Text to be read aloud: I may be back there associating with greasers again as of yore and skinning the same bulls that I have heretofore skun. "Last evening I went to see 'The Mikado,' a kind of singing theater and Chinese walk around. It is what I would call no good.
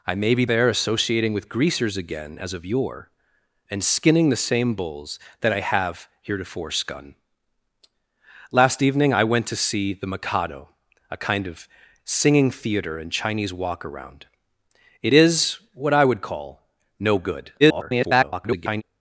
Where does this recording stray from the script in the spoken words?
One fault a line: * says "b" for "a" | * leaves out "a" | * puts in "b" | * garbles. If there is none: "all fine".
* leaves out "back"
* garbles